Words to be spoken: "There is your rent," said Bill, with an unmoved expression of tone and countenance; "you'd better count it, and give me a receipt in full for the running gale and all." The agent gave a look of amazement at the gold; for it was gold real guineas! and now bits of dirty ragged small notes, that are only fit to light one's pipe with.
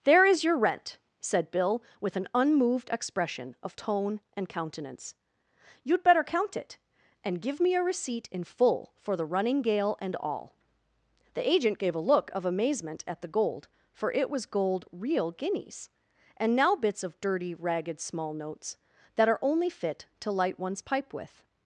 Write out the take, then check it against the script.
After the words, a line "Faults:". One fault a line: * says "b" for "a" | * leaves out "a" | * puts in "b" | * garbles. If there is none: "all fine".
"There is your rent," said Bill, with an unmoved expression of tone and countenance; "you'd better count it, and give me a receipt in full for the running gale and all." The agent gave a look of amazement at the gold; for it was gold real guineas! and now bits of dirty ragged small notes, that are only fit to light one's pipe with.
Faults:
all fine